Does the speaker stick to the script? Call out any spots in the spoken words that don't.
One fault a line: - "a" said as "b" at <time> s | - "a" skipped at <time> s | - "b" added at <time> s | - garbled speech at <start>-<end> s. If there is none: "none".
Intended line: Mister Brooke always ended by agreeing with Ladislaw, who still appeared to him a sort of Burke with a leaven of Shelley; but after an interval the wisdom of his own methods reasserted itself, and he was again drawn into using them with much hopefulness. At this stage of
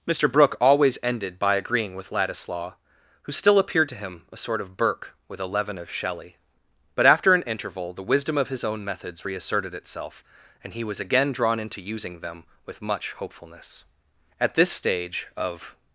none